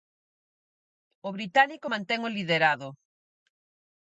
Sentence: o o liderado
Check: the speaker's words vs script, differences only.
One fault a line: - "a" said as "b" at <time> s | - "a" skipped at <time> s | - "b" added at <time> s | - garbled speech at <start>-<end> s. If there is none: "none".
- "británico mantén" added at 1.4 s